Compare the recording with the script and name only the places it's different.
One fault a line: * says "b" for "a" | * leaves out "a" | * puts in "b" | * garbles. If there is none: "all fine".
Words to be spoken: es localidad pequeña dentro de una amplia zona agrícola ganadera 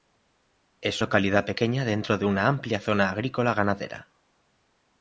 all fine